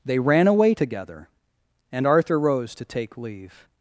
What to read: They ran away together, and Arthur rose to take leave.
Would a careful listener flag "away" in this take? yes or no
no